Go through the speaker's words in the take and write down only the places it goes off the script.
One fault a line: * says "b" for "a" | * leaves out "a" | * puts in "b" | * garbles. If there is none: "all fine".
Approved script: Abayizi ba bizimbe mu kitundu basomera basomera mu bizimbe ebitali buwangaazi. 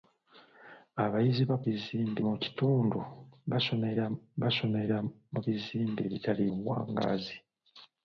all fine